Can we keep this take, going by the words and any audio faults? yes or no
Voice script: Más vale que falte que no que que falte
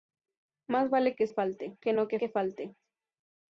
yes